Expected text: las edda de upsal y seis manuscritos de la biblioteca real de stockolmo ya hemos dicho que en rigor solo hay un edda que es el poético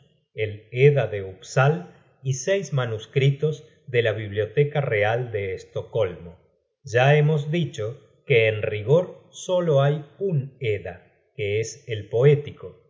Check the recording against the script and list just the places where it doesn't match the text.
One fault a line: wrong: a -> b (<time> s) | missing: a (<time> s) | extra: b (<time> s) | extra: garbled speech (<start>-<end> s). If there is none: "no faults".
wrong: las -> el (0.3 s)